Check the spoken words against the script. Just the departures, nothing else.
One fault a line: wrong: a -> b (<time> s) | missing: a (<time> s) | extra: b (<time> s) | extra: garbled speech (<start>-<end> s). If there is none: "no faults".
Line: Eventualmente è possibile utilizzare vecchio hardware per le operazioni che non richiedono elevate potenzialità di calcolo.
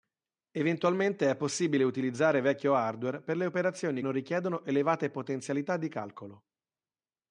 missing: che (4.0 s)